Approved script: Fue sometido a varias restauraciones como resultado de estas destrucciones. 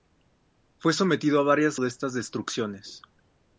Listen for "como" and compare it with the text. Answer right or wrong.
wrong